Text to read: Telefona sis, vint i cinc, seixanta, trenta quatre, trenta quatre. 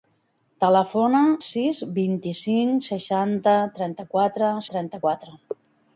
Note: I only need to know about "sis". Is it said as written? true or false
true